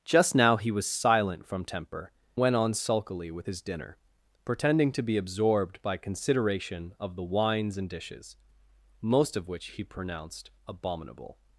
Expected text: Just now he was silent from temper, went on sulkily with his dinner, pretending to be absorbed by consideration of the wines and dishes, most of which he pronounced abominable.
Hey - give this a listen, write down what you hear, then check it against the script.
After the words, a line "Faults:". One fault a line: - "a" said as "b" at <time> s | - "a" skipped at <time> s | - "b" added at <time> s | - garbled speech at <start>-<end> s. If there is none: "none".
Just now he was silent from temper, went on sulkily with his dinner, pretending to be absorbed by consideration of the wines and dishes, most of which he pronounced abominable.
Faults:
none